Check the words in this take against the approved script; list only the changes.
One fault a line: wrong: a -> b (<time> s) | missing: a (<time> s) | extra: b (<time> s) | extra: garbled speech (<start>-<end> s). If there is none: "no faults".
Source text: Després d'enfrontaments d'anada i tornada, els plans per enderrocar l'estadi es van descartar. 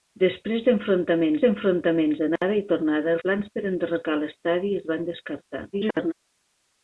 extra: d'enfrontaments (1.4 s)
missing: els (3.2 s)
extra: garbled speech (5.7-6.1 s)